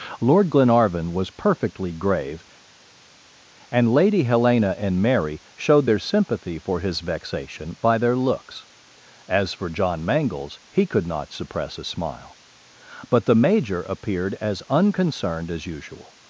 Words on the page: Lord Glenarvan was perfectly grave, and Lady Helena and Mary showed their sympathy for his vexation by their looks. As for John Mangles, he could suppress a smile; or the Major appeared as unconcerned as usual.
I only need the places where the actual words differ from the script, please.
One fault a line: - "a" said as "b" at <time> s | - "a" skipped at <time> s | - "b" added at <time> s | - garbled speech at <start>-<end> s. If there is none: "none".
- "not" added at 11.1 s
- "or" said as "but" at 13.1 s